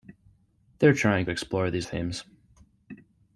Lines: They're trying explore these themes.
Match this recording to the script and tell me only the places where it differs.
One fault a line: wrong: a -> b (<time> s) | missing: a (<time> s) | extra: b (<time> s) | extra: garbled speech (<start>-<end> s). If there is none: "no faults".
no faults